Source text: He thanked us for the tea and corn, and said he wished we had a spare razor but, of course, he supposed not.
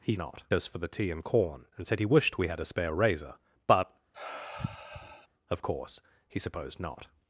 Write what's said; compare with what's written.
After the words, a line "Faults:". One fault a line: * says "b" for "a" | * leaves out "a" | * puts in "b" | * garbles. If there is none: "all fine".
He not us for the tea and corn, and said he wished we had a spare razor but, of course, he supposed not.
Faults:
* says "not" for "thanked"